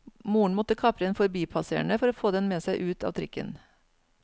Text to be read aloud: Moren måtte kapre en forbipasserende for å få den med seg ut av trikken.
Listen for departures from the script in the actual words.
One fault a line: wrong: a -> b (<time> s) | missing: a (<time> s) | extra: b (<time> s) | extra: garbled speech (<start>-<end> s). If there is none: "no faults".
no faults